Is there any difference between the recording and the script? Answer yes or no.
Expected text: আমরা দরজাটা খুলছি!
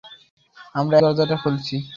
no